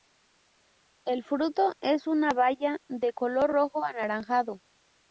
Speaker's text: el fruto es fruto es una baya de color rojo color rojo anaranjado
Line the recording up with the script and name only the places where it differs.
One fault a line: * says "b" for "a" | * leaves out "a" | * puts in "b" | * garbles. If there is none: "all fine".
* leaves out "fruto es"
* leaves out "color rojo"